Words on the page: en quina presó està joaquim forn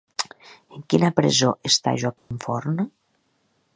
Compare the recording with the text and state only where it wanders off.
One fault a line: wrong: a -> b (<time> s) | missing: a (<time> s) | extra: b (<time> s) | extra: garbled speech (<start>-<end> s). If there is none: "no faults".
no faults